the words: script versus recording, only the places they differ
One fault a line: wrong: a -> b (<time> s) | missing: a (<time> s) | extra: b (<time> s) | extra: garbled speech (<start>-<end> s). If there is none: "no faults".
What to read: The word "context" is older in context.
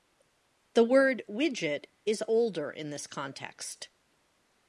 wrong: context -> widget (1.3 s)
extra: this (2.9 s)